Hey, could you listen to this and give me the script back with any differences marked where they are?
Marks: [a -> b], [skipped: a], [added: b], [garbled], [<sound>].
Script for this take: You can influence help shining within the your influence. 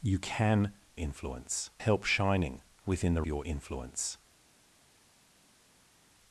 You can influence help shining within the your influence.